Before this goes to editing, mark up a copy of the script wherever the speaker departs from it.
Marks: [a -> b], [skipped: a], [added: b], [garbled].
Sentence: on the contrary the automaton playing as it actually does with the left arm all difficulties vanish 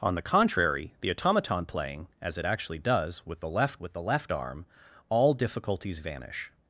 on the contrary the automaton playing as it actually does with the left [added: with the left] arm all difficulties vanish